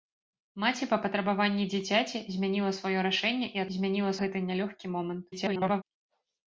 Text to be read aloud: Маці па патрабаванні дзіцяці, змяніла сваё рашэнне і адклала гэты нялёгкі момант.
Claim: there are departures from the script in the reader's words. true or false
true